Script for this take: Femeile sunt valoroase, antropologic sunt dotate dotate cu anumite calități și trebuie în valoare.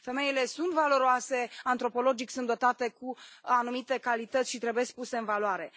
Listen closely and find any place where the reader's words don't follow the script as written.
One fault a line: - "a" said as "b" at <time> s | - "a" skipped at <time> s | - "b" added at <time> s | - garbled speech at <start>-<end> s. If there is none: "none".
- "dotate" skipped at 2.9 s
- "puse" added at 4.9 s